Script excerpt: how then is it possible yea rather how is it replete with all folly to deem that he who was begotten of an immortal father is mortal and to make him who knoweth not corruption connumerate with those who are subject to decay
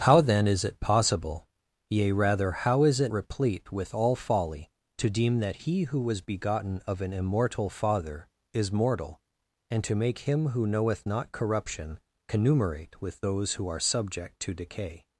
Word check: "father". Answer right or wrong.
right